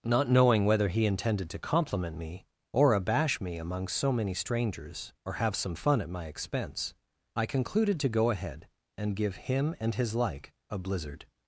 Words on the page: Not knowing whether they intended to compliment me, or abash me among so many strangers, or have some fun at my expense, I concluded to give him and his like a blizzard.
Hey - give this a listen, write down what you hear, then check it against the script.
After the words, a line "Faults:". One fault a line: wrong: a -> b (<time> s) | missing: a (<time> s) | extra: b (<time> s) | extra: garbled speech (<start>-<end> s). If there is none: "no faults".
Not knowing whether he intended to compliment me, or abash me among so many strangers, or have some fun at my expense, I concluded to go ahead, and give him and his like a blizzard.
Faults:
wrong: they -> he (0.9 s)
extra: go ahead and (8.1 s)